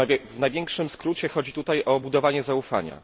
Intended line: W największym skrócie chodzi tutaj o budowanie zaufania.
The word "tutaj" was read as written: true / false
true